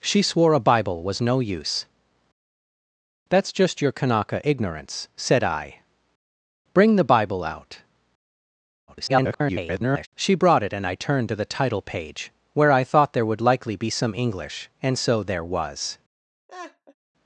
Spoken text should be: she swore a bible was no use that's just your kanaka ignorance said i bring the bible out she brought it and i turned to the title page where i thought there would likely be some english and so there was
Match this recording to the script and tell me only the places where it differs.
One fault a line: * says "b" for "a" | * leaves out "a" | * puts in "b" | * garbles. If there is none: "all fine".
* garbles